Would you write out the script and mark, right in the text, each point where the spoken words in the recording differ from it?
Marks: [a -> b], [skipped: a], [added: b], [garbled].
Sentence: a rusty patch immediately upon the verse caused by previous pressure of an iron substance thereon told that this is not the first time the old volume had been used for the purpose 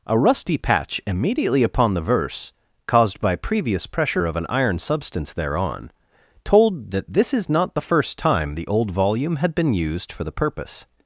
a rusty patch immediately upon the verse caused by previous pressure of an iron substance thereon told that this is not the first time the old volume had been used for the purpose